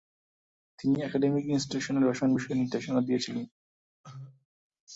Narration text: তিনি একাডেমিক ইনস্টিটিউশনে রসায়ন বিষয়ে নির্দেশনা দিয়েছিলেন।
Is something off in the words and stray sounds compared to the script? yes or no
yes